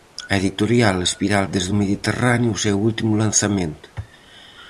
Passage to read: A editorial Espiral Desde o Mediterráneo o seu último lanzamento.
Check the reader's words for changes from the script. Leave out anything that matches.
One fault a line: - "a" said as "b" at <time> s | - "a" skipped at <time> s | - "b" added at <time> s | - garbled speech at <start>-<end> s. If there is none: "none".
none